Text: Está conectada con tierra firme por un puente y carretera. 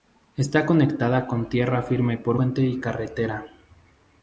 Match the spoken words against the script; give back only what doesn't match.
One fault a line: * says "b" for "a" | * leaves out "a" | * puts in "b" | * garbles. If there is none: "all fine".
* leaves out "un"